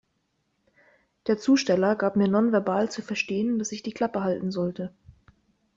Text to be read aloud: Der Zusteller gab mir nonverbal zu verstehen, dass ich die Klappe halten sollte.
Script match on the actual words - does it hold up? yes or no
yes